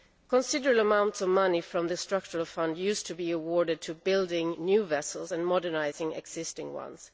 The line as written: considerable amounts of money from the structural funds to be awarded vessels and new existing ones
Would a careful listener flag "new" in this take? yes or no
yes